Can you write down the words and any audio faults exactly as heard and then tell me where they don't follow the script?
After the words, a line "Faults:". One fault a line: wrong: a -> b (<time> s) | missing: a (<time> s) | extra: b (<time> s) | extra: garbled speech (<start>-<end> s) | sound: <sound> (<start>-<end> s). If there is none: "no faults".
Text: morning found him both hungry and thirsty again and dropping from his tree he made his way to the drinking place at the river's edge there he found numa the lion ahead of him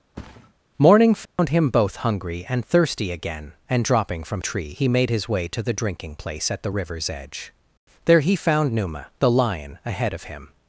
morning found him both hungry and thirsty again and dropping from tree he made his way to the drinking place at the river's edge there he found numa the lion ahead of him
Faults:
sound: thud (0.1-0.5 s)
sound: dropout (1.3-1.4 s)
missing: his (4.4 s)